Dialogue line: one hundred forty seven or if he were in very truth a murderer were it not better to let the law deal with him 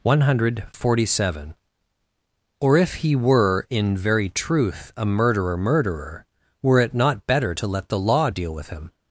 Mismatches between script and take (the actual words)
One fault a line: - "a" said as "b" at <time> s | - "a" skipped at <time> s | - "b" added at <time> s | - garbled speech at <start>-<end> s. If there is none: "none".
- "murderer" added at 5.6 s